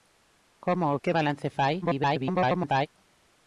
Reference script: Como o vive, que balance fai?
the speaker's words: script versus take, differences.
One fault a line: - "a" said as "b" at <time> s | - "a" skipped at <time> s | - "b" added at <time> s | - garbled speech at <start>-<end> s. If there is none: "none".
- "vive" skipped at 1.0 s
- garbled speech at 1.8-2.9 s